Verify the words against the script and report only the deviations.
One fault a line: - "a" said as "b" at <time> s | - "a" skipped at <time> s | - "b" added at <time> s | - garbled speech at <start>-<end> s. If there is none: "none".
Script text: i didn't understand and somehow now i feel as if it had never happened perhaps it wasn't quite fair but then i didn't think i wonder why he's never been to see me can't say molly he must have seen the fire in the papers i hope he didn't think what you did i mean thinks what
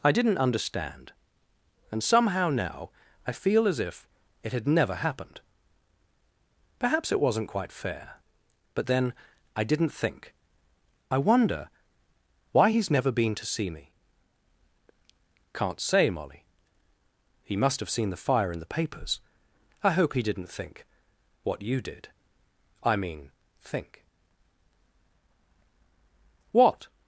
- "thinks" said as "think" at 23.6 s